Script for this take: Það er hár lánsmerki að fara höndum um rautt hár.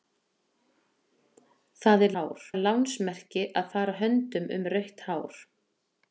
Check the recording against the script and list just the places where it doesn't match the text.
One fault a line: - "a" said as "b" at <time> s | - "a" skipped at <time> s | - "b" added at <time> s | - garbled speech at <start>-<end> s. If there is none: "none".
none